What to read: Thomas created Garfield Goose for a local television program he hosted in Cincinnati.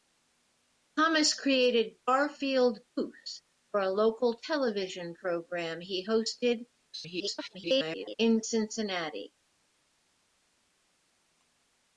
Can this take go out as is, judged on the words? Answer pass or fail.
fail